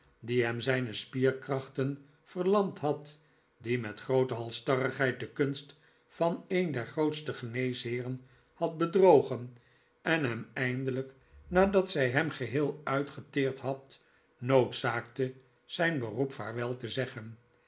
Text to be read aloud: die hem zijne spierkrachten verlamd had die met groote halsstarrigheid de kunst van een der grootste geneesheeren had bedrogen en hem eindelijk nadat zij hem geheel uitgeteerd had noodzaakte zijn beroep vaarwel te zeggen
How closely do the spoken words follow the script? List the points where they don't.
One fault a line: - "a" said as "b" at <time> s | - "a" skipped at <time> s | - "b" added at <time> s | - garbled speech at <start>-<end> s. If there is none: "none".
none